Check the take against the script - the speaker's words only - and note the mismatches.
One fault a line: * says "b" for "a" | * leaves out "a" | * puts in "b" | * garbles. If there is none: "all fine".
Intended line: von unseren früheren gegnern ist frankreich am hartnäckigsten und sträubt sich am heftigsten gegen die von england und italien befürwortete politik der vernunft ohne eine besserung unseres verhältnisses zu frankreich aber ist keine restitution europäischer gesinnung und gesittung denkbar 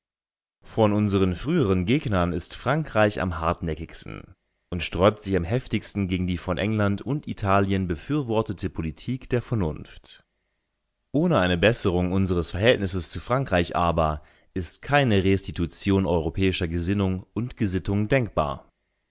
all fine